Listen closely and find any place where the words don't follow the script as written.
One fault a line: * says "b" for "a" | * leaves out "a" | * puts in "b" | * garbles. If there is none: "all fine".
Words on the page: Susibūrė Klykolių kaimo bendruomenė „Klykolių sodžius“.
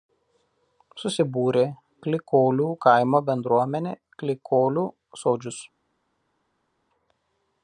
all fine